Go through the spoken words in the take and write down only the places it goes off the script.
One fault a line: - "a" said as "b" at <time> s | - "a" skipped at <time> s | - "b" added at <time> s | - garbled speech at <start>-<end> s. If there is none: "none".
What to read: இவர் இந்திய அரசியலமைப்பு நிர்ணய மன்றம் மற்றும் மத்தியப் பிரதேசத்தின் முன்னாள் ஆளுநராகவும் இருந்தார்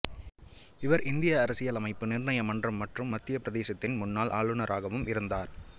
none